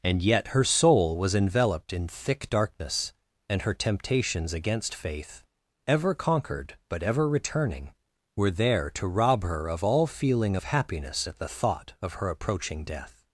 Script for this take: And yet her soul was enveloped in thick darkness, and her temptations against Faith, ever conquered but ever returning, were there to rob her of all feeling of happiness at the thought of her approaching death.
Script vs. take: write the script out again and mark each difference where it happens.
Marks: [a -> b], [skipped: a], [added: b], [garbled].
And yet her soul was enveloped in thick darkness, and her temptations against Faith, ever conquered but ever returning, were there to rob her of all feeling of happiness at the thought of her approaching death.